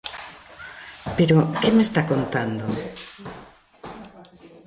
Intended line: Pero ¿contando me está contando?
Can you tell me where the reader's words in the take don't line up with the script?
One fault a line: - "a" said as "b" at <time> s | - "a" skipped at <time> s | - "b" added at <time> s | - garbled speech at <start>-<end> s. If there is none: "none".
- "contando" said as "que" at 1.6 s